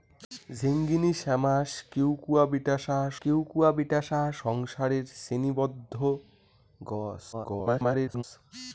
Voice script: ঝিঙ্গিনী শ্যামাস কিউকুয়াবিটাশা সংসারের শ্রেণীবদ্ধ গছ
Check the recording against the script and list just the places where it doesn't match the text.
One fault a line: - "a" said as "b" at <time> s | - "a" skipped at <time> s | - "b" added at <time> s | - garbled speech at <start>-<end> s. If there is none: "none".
- "কিউকুয়াবিটাশা" added at 3.2 s
- garbled speech at 7.3-8.2 s